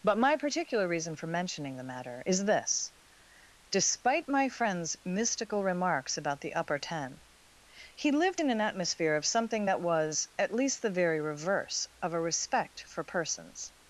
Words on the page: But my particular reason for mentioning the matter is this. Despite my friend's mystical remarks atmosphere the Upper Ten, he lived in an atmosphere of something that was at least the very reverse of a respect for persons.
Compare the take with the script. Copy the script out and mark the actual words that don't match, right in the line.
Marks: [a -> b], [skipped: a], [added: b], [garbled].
But my particular reason for mentioning the matter is this. Despite my friend's mystical remarks [atmosphere -> about] the Upper Ten, he lived in an atmosphere of something that was at least the very reverse of a respect for persons.